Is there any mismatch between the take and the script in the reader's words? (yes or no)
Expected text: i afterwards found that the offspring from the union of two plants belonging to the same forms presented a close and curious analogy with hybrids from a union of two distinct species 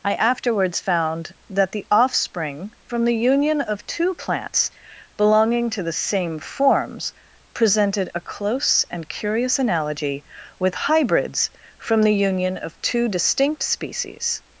yes